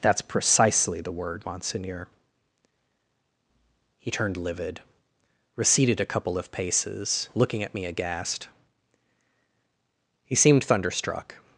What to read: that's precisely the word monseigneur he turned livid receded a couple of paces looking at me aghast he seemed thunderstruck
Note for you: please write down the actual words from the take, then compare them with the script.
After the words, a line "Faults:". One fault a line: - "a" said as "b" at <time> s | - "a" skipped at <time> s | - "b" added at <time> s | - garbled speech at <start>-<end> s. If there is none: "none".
that's precisely the word monseigneur he turned livid receded a couple of paces looking at me aghast he seemed thunderstruck
Faults:
none